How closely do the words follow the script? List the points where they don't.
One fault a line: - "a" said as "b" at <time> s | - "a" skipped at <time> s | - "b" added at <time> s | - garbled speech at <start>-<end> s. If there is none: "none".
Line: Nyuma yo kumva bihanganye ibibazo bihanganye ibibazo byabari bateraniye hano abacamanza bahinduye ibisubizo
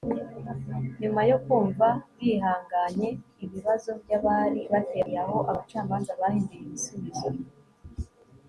- "bihanganye ibibazo" skipped at 3.9 s
- "hano" said as "aho" at 5.2 s